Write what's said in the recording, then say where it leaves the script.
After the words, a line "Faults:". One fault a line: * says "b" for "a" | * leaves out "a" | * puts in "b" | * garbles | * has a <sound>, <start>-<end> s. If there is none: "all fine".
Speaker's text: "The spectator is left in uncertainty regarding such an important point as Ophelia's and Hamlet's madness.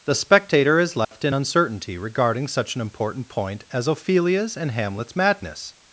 "The spectator is left in uncertainty regarding such an important point as Ophelia's and Hamlet's madness.
Faults:
* has a dropout, 1.0-1.1 s